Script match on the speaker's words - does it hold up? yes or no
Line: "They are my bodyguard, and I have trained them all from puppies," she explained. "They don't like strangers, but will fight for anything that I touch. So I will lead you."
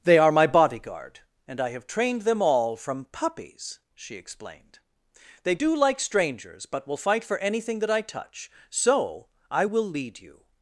no